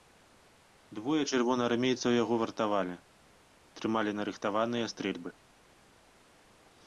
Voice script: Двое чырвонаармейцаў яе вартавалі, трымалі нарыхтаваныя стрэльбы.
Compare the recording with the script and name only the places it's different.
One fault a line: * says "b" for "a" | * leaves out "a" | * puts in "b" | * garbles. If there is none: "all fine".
* says "яго" for "яе"